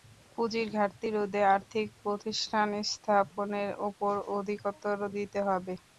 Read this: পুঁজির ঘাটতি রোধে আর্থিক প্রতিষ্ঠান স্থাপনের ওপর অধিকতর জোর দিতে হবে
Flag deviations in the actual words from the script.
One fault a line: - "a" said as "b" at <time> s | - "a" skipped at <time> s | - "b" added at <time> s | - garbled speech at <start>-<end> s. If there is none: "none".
- "জোর" skipped at 5.0 s